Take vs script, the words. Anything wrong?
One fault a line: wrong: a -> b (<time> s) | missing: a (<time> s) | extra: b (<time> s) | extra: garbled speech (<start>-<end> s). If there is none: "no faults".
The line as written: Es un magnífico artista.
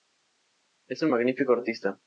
no faults